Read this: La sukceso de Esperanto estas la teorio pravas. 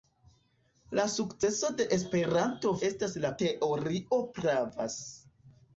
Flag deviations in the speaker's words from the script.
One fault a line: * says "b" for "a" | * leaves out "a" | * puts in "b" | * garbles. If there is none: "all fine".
all fine